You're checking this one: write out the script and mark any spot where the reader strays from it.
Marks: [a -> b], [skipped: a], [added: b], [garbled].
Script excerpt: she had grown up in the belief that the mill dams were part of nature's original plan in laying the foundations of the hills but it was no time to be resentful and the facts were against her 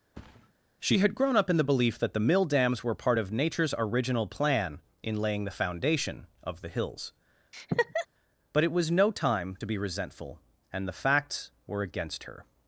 she had grown up in the belief that the mill dams were part of nature's original plan in laying the [foundations -> foundation] of the hills but it was no time to be resentful and the facts were against her